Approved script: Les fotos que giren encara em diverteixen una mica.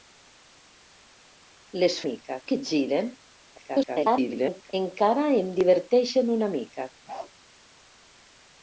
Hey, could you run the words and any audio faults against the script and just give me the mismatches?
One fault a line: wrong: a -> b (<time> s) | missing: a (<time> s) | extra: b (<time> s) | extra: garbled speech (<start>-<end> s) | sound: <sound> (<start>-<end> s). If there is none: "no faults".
wrong: fotos -> mica (2.1 s)
extra: garbled speech (3.6-4.7 s)
sound: bark (7.1-7.3 s)